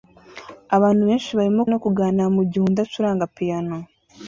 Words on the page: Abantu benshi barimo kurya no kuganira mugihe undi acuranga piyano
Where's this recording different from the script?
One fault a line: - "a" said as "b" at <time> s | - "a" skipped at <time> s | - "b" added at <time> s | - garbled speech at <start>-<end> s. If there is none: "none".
- "kurya" skipped at 1.6 s